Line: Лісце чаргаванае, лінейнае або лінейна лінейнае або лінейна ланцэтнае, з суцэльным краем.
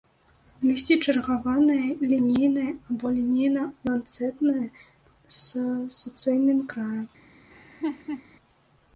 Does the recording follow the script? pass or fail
fail